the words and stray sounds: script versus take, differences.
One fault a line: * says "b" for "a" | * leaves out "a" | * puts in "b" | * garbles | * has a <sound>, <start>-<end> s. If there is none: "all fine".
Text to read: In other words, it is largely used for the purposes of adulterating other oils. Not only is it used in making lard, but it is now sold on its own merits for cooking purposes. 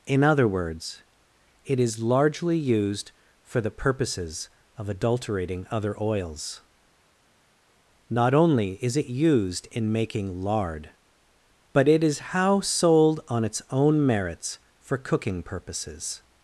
* says "how" for "now"